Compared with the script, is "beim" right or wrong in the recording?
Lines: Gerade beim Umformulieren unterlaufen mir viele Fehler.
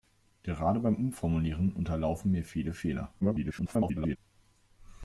right